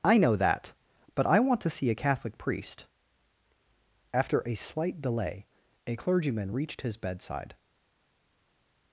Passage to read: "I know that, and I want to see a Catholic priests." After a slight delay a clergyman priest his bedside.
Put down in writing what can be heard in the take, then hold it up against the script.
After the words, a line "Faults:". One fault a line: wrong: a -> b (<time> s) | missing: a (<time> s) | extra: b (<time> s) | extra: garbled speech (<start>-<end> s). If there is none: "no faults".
"I know that, but I want to see a Catholic priest." After a slight delay a clergyman reached his bedside.
Faults:
wrong: and -> but (1.1 s)
wrong: priests -> priest (2.4 s)
wrong: priest -> reached (6.5 s)